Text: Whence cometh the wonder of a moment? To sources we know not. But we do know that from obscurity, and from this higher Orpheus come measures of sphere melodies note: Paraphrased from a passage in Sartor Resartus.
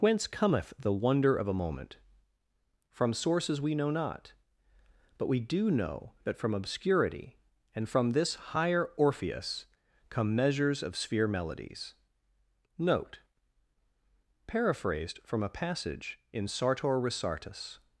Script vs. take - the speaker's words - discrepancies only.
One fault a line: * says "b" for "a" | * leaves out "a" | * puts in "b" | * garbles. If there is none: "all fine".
* says "From" for "To"